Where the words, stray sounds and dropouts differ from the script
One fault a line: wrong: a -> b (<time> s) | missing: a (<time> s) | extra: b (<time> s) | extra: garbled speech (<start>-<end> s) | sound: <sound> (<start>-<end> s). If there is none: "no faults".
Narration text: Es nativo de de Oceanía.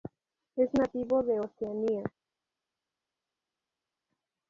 missing: de (1.4 s)